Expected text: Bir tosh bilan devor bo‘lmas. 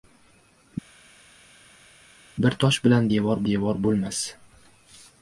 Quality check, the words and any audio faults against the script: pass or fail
fail